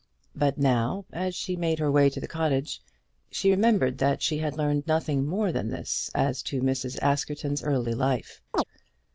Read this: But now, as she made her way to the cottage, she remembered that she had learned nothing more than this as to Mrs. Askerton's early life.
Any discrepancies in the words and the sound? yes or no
yes